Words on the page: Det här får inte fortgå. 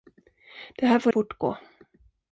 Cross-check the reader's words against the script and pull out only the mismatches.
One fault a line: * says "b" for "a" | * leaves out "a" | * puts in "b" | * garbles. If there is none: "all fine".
* leaves out "inte"